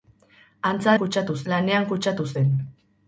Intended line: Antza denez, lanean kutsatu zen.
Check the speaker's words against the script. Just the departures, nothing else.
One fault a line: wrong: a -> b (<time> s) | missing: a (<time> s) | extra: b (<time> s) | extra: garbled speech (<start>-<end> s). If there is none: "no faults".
wrong: denez -> kutsatu (1.0 s)